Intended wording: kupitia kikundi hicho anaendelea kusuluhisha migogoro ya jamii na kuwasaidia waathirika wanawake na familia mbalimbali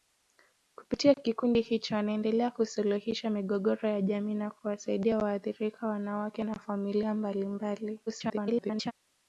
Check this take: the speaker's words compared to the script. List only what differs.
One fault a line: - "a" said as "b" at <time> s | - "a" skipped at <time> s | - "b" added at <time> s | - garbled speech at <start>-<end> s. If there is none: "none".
- garbled speech at 8.1-8.9 s